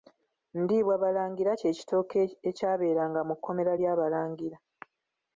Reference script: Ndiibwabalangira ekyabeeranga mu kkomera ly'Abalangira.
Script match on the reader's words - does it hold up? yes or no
no